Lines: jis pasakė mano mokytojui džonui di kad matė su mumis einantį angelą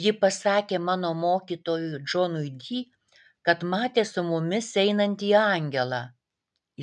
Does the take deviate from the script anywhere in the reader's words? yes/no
yes